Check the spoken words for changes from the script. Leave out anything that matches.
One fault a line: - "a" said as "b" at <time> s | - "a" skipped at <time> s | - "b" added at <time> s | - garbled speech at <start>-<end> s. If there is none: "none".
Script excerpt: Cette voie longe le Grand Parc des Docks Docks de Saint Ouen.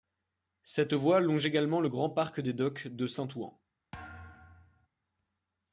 - "également" added at 1.4 s
- "Docks" skipped at 2.9 s